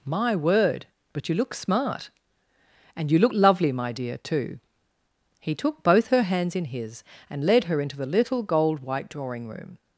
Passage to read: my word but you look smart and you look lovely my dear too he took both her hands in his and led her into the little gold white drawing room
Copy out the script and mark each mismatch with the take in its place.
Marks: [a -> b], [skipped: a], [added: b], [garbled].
my word but you look smart and you look lovely my dear too he took both her hands in his and led her into the little gold white drawing room